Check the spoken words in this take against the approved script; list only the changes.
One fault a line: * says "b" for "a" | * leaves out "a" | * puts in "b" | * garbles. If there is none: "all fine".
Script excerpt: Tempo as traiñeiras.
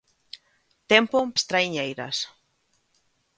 all fine